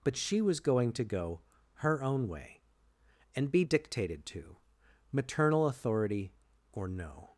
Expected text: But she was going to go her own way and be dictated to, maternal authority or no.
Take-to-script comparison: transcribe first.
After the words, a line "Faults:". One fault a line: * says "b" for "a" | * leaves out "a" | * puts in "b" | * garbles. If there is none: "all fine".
But she was going to go her own way and be dictated to, maternal authority or no.
Faults:
all fine